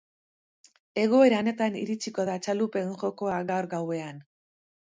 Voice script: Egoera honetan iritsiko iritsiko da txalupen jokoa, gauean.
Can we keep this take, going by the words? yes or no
no